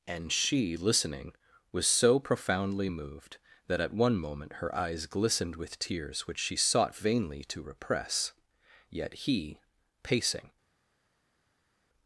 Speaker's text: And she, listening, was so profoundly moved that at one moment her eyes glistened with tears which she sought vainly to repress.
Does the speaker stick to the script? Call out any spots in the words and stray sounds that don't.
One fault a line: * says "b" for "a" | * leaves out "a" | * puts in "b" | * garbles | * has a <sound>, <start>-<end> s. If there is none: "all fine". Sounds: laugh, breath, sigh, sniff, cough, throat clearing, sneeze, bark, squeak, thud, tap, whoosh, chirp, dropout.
* puts in "Yet he pacing"